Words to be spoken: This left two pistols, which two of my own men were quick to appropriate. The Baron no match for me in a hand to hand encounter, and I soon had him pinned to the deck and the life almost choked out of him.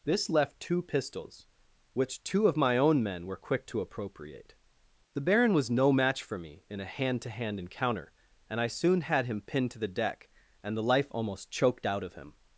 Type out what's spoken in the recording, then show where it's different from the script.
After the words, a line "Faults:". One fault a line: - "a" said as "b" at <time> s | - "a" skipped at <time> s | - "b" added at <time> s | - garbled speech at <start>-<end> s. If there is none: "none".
This left two pistols, which two of my own men were quick to appropriate. The Baron was no match for me in a hand to hand encounter, and I soon had him pinned to the deck and the life almost choked out of him.
Faults:
- "was" added at 5.5 s